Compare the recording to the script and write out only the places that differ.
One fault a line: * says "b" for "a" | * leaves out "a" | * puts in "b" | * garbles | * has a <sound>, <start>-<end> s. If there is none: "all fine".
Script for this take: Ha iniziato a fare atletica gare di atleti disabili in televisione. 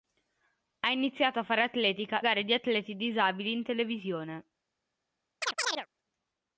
* has a chirp, 5.4-5.9 s